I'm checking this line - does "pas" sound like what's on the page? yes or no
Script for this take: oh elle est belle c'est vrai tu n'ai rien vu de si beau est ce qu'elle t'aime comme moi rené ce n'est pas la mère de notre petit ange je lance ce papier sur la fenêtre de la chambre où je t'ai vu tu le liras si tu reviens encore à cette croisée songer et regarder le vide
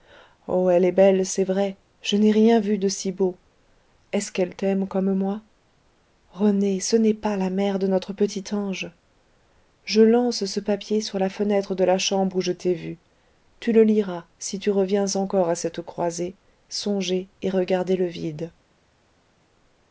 yes